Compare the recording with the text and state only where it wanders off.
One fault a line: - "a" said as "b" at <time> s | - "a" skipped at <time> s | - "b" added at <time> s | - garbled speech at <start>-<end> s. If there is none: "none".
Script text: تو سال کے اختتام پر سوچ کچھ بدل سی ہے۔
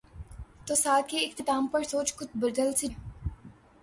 none